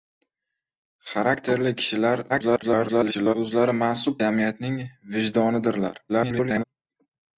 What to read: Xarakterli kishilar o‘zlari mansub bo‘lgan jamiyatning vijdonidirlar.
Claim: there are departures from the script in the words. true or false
true